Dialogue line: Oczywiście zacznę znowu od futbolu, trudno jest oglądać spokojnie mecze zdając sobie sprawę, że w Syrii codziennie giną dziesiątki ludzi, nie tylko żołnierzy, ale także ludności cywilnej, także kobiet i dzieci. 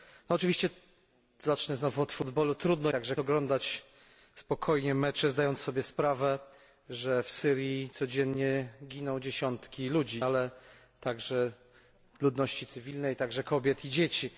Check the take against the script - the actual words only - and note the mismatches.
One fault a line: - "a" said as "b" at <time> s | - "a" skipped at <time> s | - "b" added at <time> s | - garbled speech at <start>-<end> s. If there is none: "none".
- "jest" said as "także" at 2.9 s
- "nie tylko żołnierzy" skipped at 10.2 s